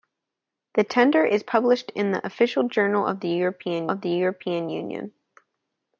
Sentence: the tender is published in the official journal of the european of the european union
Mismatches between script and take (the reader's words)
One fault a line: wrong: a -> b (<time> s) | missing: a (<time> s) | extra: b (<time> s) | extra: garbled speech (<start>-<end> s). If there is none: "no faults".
no faults